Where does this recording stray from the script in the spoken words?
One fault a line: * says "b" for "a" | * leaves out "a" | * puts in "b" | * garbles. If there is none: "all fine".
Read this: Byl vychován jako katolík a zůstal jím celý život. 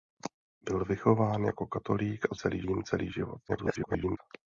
* says "celý" for "zůstal"
* garbles